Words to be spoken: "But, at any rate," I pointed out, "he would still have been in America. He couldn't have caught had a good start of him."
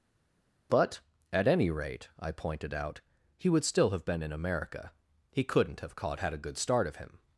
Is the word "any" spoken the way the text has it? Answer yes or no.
yes